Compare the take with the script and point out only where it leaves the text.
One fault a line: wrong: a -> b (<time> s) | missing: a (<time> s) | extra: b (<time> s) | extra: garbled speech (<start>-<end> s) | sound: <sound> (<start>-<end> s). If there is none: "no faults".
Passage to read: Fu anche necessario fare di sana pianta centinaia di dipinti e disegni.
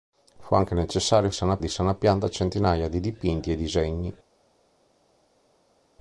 wrong: fare -> sana (1.3 s)